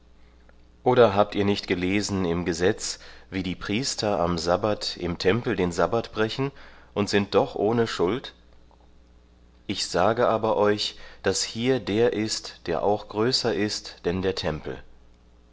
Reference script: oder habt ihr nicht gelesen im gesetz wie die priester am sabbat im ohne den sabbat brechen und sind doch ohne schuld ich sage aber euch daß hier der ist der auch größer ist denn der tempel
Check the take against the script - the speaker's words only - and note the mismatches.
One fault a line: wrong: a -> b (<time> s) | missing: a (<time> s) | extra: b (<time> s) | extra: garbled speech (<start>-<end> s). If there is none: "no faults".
wrong: ohne -> tempel (5.2 s)